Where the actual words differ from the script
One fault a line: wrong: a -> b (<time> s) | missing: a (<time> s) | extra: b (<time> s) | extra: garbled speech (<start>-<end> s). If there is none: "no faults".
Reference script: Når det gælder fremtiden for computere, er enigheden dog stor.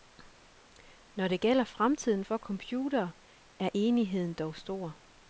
no faults